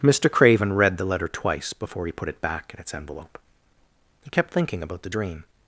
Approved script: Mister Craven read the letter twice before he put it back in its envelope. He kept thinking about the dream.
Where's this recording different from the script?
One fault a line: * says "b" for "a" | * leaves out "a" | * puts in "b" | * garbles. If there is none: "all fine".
all fine